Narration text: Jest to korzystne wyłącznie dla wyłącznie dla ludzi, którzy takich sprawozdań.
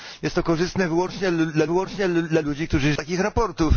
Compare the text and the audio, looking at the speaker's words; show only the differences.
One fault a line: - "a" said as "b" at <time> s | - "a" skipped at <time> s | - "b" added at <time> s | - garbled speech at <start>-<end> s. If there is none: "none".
none